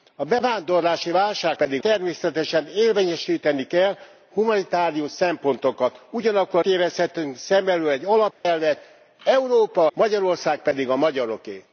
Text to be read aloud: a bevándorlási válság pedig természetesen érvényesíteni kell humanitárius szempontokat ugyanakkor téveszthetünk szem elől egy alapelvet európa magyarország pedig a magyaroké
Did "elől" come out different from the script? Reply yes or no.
no